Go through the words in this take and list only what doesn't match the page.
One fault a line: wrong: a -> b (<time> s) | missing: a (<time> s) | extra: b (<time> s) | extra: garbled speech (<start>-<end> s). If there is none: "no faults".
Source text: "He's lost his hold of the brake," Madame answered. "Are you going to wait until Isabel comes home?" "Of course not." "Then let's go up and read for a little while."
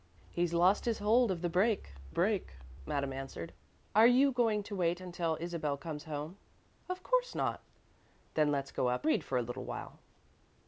extra: brake (2.1 s)
missing: and (9.1 s)